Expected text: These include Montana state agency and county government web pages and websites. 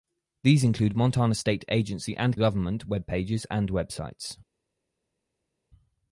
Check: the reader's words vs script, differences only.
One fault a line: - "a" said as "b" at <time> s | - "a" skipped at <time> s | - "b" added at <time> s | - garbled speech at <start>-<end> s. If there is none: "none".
- "county" skipped at 2.4 s